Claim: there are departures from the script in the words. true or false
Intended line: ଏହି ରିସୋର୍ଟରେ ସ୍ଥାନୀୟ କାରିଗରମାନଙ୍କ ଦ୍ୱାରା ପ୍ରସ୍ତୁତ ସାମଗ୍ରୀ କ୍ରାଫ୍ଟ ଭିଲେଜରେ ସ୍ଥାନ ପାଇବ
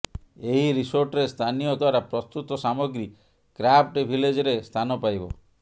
true